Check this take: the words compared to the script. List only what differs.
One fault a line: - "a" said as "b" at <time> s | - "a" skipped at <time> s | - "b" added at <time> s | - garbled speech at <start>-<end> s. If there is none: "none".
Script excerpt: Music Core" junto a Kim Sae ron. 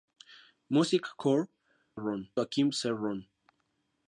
- "junto" said as "ron" at 1.9 s